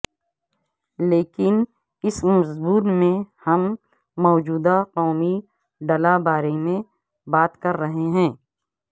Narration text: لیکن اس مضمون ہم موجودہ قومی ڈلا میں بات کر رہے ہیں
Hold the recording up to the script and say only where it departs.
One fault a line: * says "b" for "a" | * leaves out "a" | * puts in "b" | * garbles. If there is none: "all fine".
* puts in "میں"
* puts in "بارے"